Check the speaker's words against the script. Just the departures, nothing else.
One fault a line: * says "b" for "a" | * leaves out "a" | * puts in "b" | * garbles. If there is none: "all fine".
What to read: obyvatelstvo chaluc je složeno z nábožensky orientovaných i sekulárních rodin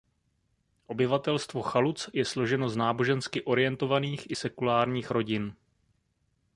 all fine